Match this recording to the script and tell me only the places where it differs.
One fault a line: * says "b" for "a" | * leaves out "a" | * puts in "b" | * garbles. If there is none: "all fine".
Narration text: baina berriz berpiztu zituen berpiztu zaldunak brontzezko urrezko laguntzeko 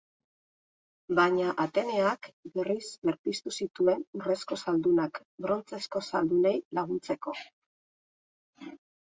* puts in "ateneak"
* says "urrezko" for "berpiztu"
* says "zaldunei" for "urrezko"